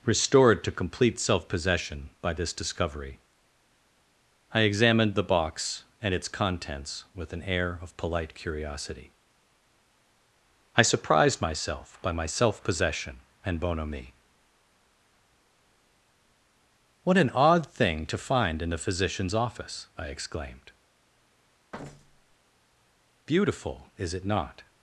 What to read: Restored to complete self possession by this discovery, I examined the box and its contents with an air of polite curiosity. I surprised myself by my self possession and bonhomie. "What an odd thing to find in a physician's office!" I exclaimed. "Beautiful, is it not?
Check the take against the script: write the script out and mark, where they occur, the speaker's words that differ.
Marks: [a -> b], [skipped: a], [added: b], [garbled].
Restored to complete self possession by this discovery, I examined the box and its contents with an air of polite curiosity. I surprised myself by my self possession and bonhomie. "What an odd thing to find in [a -> the] physician's office!" I exclaimed. "Beautiful, is it not?